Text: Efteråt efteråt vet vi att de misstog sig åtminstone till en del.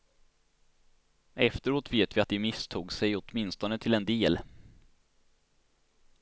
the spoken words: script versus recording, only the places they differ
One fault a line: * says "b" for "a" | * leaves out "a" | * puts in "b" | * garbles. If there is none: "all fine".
* leaves out "efteråt"